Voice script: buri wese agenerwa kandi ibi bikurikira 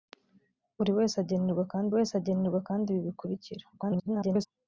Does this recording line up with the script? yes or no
no